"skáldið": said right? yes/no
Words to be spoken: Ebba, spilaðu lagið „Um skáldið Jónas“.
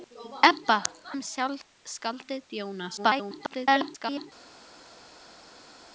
yes